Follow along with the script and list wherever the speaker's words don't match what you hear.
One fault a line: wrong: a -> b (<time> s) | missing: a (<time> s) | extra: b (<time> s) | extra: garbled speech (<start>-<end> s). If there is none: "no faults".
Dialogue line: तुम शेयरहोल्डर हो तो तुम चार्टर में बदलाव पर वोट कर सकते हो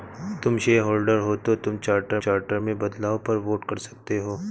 extra: चार्टर (2.2 s)